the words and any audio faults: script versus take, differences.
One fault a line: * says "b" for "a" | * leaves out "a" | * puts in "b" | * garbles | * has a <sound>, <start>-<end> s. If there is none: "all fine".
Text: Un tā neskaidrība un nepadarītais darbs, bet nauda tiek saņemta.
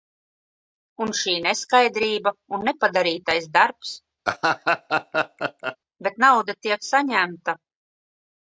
* says "šī" for "tā"
* has a laugh, 4.2-5.8 s